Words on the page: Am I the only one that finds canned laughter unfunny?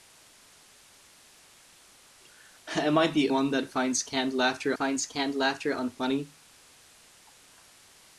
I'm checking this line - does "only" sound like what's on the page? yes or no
no